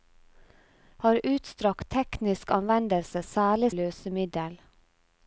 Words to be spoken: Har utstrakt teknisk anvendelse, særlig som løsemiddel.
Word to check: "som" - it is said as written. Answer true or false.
false